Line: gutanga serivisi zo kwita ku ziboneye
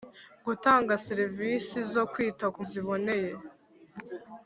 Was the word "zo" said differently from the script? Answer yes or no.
no